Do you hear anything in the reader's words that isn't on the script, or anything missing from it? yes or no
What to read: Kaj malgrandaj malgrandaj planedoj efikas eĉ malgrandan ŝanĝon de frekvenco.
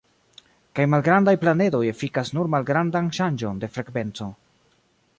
yes